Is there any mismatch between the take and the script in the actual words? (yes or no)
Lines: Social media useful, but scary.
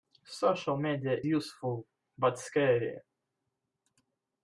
no